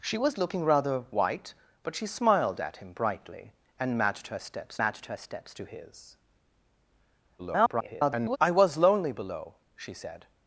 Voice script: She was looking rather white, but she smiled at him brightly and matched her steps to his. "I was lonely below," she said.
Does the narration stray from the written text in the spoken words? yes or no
yes